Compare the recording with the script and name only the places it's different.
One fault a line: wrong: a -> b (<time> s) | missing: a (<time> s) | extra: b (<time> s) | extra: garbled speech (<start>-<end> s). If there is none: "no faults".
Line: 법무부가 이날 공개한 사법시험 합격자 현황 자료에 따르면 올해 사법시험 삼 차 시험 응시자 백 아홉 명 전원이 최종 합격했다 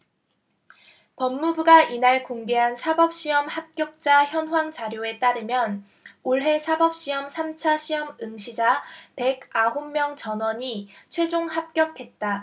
no faults